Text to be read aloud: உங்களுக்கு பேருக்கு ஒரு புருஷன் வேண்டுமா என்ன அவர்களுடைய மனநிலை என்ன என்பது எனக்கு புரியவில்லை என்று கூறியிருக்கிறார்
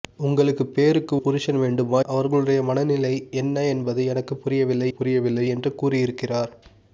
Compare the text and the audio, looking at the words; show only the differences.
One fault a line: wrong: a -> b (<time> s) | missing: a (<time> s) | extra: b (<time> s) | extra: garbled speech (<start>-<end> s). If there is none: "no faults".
missing: ஒரு (1.1 s)
missing: என்ன (2.0 s)
extra: புரியவில்லை (4.9 s)